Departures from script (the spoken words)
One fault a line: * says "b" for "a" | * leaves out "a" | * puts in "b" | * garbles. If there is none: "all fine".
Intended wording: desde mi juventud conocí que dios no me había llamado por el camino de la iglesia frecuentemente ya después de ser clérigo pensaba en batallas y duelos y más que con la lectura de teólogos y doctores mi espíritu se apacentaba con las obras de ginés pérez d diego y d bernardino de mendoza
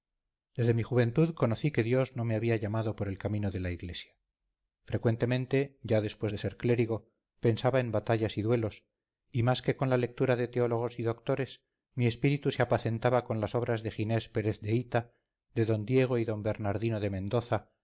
* puts in "de hita de"